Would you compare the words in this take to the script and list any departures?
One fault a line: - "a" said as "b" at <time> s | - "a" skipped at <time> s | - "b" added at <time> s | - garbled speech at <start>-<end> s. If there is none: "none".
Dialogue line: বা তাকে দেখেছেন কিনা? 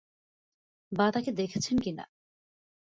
none